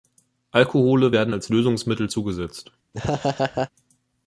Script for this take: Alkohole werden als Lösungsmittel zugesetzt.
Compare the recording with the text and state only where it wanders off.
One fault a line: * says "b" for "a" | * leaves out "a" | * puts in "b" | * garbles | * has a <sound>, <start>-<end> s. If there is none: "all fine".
* has a laugh, 2.9-3.7 s